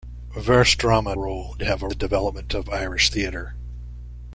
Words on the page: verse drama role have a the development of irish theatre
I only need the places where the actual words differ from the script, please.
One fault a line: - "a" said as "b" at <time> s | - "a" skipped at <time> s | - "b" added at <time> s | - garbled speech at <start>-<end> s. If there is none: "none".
none